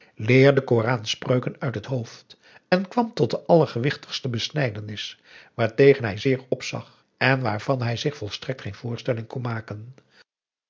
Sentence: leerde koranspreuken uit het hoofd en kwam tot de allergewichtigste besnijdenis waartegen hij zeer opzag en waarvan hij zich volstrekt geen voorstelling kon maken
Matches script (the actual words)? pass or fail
pass